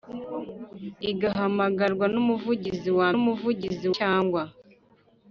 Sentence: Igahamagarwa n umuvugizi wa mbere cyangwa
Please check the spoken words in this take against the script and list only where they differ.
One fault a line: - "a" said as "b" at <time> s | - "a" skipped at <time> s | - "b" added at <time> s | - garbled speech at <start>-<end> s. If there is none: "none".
- "mbere" said as "umuvugizi" at 3.2 s